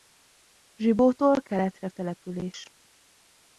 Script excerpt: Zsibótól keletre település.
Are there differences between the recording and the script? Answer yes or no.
no